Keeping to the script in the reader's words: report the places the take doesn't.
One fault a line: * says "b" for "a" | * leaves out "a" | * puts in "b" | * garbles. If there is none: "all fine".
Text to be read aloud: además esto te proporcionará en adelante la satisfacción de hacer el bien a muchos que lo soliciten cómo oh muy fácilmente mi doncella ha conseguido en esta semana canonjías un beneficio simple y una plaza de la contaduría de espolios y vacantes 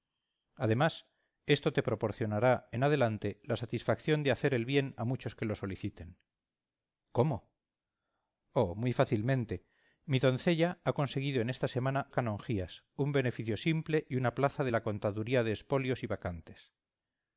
all fine